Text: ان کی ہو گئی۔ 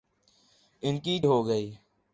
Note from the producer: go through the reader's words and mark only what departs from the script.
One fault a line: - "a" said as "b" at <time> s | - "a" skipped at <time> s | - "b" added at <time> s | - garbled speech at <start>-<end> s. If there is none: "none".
none